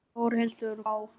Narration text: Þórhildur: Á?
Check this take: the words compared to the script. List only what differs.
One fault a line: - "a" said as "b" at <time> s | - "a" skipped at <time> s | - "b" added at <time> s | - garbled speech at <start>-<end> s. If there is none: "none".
none